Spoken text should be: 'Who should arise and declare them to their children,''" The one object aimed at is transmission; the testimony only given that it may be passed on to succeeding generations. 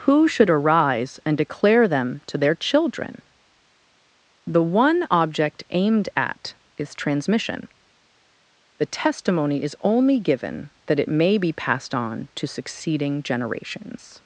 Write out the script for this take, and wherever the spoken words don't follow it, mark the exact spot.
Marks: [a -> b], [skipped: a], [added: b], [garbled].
'Who should arise and declare them to their children,''" The one object aimed at is transmission; the testimony [added: is] only given that it may be passed on to succeeding generations.